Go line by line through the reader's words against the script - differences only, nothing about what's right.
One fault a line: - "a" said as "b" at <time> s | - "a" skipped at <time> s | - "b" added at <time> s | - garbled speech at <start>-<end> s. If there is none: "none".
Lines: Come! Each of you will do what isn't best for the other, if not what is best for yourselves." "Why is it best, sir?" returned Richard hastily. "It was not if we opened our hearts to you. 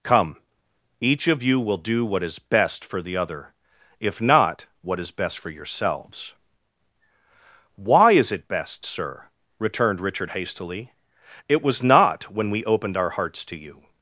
- "isn't" said as "is" at 2.2 s
- "if" said as "when" at 12.3 s